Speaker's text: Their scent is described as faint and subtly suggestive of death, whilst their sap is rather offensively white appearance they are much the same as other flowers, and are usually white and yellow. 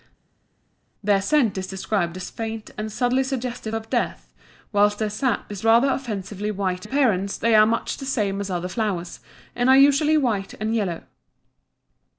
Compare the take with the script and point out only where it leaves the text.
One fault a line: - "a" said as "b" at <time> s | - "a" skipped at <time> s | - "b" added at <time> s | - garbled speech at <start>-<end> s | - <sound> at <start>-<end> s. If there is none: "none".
none